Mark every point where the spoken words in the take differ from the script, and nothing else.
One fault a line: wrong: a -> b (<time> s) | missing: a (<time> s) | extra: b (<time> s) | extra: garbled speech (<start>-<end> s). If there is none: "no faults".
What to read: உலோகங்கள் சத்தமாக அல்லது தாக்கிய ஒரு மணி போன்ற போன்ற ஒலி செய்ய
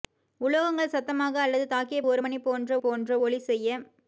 no faults